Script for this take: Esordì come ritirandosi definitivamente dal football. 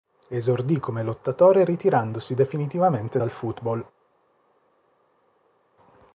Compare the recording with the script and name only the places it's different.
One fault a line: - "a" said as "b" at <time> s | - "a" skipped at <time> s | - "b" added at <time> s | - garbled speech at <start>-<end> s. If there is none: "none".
- "lottatore" added at 1.0 s